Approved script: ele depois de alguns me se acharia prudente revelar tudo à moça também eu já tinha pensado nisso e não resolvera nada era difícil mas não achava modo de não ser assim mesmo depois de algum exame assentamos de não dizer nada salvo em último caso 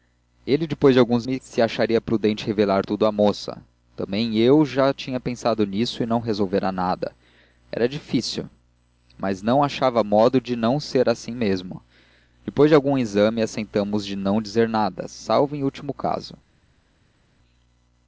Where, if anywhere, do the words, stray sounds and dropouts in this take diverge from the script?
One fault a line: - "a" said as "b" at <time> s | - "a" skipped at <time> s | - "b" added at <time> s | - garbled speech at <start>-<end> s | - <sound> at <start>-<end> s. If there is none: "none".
none